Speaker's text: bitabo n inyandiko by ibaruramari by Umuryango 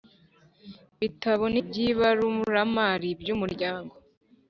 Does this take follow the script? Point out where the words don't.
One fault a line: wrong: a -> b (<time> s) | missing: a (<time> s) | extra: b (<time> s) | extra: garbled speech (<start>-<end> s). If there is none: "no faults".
missing: inyandiko (1.6 s)